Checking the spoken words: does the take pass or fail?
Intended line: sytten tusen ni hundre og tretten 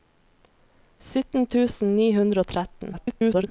fail